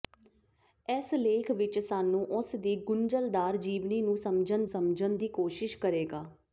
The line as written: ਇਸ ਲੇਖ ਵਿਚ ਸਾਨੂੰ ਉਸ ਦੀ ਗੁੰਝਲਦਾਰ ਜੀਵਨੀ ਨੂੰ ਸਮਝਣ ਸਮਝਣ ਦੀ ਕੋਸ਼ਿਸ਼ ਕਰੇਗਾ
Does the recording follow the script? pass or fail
pass